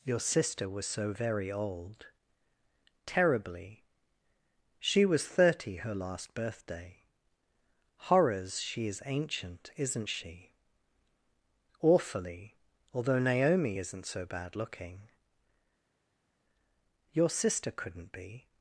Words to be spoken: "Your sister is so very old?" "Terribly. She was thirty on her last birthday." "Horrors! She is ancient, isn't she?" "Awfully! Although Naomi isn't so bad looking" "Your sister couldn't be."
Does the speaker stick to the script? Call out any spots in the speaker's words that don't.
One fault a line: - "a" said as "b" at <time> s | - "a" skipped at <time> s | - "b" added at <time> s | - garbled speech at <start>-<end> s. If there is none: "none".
- "is" said as "was" at 0.7 s
- "on" skipped at 5.8 s